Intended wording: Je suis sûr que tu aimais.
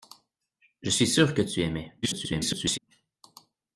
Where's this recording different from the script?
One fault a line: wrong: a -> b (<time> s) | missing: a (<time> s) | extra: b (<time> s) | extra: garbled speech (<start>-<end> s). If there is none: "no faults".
extra: garbled speech (2.0-2.8 s)